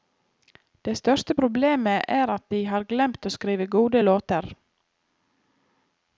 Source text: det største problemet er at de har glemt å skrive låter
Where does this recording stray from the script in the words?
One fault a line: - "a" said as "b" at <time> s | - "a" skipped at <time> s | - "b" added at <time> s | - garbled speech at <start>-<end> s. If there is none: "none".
- "gode" added at 3.8 s